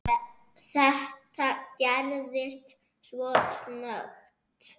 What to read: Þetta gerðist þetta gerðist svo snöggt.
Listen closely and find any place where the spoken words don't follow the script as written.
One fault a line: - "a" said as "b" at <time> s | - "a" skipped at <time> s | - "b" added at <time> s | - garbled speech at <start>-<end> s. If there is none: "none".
- "þetta gerðist" skipped at 2.8 s